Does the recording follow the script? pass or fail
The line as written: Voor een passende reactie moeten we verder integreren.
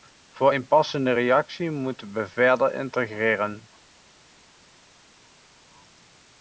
pass